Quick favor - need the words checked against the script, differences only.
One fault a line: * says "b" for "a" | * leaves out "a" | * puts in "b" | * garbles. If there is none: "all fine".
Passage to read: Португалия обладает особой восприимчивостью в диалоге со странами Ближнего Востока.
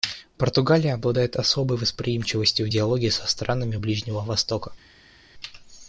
all fine